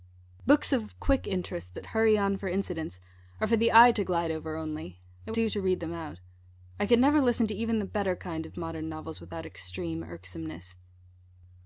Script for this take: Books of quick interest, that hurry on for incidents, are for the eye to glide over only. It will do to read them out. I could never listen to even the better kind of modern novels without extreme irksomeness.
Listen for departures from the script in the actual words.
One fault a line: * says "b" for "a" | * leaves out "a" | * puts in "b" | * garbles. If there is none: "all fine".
all fine